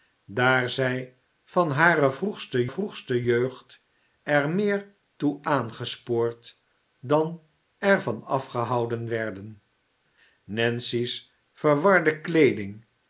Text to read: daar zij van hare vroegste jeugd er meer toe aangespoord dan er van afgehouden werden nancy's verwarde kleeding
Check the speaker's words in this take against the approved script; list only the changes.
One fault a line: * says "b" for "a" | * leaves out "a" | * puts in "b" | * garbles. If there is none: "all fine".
* puts in "vroegste"